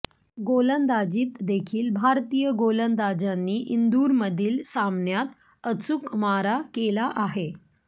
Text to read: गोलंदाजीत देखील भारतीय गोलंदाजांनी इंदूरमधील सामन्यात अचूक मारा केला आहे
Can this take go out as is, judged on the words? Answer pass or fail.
pass